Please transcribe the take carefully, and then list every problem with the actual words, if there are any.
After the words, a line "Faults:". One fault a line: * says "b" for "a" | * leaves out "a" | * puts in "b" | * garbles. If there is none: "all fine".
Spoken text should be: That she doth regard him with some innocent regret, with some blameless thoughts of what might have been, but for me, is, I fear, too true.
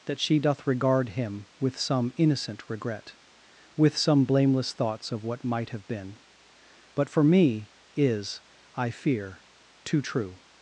That she doth regard him with some innocent regret, with some blameless thoughts of what might have been, but for me, is, I fear, too true.
Faults:
all fine